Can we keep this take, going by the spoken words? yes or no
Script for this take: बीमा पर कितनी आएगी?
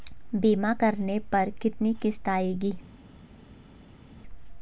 no